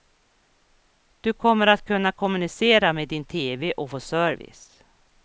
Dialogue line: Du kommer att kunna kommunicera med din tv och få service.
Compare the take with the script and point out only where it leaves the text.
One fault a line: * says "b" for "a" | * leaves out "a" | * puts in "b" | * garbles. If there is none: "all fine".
all fine